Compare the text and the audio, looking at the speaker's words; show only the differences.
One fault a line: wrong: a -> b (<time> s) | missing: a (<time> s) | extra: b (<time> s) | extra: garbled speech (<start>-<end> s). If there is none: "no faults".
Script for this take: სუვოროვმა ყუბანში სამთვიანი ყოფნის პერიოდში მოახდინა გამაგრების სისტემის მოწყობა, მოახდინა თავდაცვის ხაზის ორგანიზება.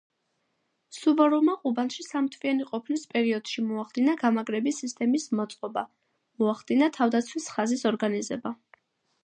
no faults